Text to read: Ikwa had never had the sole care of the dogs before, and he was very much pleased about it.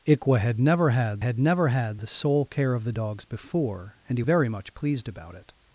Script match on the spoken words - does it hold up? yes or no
no